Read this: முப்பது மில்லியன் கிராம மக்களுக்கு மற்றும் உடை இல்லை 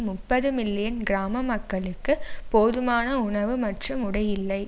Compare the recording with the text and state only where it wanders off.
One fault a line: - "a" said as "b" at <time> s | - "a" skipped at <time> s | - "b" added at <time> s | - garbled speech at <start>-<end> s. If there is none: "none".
- "போதுமான உணவு" added at 2.5 s